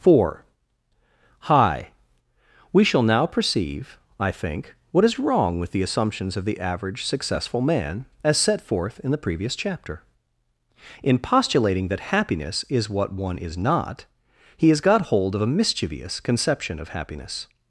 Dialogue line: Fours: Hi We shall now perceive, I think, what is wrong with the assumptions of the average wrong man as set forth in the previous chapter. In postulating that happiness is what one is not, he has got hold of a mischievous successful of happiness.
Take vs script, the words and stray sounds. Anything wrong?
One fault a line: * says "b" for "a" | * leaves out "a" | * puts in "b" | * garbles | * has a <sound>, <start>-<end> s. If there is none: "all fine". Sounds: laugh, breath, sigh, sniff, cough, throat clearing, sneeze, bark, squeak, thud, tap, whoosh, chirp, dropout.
* says "Four" for "Fours"
* says "successful" for "wrong"
* says "conception" for "successful"